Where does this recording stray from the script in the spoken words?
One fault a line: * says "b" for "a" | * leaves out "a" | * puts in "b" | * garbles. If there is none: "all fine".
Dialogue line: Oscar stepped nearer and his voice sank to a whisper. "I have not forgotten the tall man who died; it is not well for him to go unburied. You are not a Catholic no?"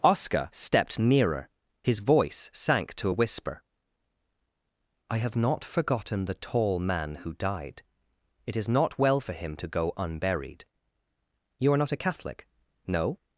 * leaves out "and"